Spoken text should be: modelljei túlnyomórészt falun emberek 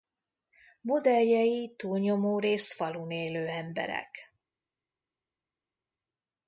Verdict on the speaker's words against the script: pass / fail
fail